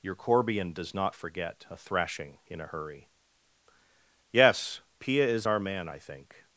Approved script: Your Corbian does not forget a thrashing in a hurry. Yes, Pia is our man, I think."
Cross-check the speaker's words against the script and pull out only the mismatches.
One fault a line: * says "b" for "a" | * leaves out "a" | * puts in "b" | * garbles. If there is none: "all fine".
all fine